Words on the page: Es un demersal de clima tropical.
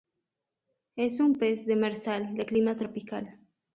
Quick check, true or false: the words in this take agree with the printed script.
false